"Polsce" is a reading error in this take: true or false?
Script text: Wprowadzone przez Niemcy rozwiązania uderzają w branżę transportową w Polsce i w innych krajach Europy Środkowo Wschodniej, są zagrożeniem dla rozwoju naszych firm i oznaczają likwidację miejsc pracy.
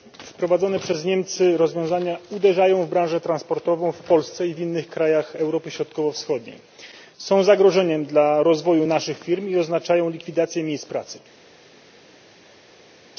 false